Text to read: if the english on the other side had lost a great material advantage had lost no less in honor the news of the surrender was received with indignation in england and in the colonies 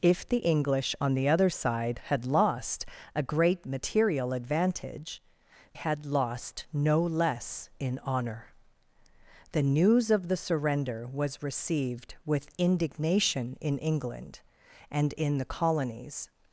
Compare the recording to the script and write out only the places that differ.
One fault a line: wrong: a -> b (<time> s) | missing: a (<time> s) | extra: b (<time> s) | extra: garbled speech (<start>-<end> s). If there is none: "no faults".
no faults